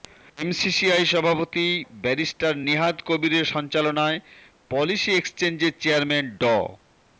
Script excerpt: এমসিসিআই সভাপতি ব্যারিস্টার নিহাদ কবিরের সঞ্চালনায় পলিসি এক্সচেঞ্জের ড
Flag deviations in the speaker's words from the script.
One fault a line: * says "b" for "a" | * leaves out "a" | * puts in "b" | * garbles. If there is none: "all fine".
* puts in "চেয়ারম্যান"